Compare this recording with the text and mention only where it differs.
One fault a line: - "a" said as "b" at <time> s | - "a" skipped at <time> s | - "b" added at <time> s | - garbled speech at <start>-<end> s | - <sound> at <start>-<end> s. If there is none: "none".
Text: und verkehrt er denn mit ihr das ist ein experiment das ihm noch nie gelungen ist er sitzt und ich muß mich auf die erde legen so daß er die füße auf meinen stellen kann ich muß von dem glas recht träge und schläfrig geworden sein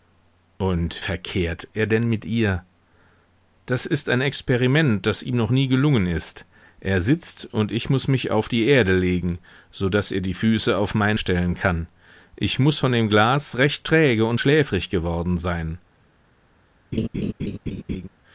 - laugh at 16.9-18.1 s